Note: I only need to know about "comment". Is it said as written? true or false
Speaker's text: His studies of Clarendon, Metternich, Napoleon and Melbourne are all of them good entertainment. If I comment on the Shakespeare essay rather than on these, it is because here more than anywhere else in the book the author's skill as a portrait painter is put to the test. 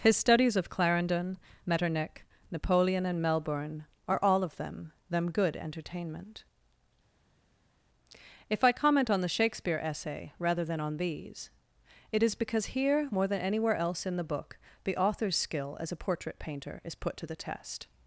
true